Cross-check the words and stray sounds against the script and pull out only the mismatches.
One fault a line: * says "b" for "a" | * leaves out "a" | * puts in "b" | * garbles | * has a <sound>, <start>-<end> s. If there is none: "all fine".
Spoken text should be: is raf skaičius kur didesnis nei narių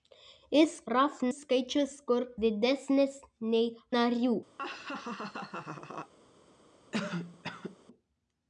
* has a laugh, 4.6-6.1 s
* has a cough, 6.9-7.8 s